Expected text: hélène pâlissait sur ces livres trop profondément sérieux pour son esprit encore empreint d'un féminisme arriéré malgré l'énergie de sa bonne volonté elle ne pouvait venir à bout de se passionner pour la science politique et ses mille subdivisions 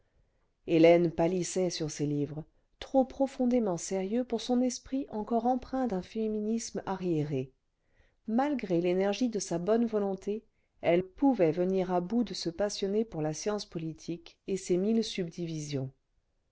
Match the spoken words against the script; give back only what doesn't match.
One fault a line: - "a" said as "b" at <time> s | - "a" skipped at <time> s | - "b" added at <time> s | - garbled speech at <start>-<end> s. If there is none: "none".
- "ne" skipped at 11.0 s